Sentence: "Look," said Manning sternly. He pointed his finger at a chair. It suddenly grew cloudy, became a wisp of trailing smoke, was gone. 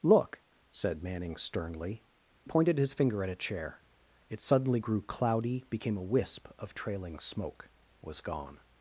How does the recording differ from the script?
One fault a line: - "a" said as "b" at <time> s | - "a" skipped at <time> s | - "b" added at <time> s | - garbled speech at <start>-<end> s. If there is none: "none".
- "He" skipped at 2.0 s